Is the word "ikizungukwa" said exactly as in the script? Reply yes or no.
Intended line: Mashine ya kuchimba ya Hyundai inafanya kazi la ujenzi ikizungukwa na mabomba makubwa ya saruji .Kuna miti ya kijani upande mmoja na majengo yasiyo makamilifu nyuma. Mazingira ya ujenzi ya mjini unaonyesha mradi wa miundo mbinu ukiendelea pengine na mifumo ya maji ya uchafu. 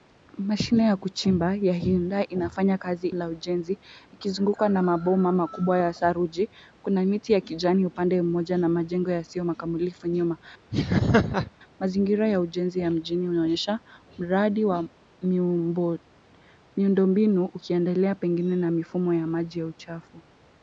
yes